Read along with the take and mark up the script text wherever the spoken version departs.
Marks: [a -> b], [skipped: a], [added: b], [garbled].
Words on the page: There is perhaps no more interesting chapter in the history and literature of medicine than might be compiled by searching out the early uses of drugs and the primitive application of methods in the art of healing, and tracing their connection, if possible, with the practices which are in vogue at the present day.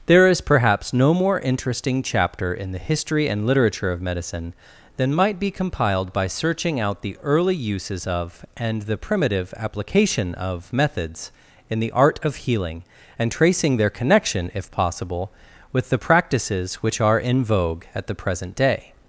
There is perhaps no more interesting chapter in the history and literature of medicine than might be compiled by searching out the early uses of [skipped: drugs] and the primitive application of methods in the art of healing, and tracing their connection, if possible, with the practices which are in vogue at the present day.